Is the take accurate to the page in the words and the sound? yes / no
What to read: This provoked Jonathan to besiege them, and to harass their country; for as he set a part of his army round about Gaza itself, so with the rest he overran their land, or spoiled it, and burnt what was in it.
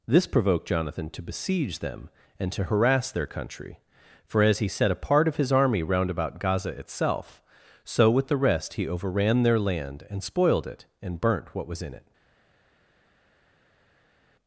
no